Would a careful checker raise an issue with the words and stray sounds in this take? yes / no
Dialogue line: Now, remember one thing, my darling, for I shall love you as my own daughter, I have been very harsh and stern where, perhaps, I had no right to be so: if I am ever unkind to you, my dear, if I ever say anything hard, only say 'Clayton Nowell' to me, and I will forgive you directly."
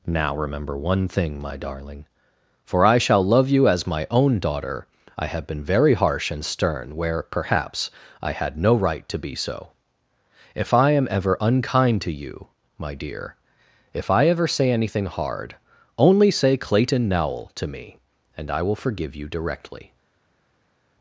no